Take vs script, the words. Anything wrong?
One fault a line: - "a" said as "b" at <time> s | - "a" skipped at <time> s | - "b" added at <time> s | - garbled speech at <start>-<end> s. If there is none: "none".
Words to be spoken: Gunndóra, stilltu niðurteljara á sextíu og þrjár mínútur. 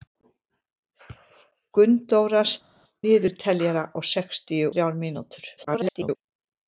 - "stilltu" skipped at 2.4 s
- "og" skipped at 4.7 s
- garbled speech at 5.6-6.2 s